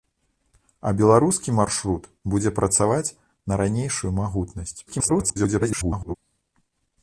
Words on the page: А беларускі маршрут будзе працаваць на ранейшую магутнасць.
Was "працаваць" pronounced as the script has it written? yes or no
yes